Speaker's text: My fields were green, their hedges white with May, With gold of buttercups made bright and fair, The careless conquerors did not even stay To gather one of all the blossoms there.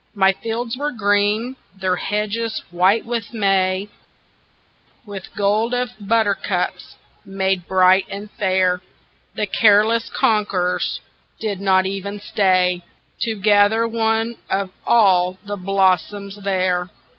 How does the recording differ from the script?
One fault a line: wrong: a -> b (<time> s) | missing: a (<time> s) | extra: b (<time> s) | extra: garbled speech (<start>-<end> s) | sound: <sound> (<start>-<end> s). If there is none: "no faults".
no faults